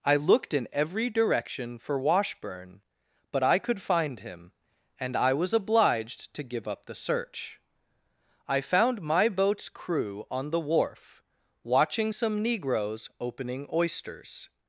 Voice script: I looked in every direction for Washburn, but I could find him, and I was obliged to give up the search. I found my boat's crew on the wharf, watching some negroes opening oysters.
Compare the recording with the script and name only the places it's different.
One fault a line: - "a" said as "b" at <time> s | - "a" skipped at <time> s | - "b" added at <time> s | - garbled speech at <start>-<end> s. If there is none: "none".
none